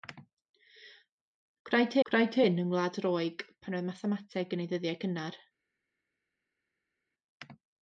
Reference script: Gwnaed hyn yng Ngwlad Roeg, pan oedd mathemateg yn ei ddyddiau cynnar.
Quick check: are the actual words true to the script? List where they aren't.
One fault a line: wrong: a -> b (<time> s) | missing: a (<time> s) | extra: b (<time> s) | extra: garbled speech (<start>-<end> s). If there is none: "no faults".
extra: gwnaed (2.1 s)